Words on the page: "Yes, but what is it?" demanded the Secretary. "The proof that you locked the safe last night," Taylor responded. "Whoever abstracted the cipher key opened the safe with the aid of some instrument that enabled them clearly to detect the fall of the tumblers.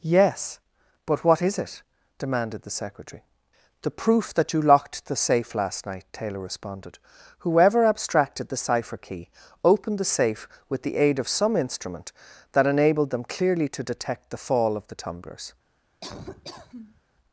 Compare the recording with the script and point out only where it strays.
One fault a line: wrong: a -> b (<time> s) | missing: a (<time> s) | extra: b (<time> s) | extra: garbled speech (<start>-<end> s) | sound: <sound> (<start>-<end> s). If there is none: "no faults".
sound: laugh (16.0-17.0 s)